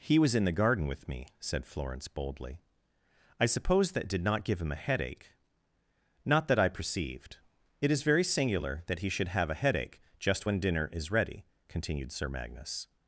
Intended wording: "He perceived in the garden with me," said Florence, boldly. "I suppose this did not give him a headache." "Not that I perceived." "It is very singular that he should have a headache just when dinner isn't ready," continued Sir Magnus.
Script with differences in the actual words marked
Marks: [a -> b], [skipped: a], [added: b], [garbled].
"He [perceived -> was] in the garden with me," said Florence, boldly. "I suppose [this -> that] did not give him a headache." "Not that I perceived." "It is very singular that he should have a headache just when dinner [isn't -> is] ready," continued Sir Magnus.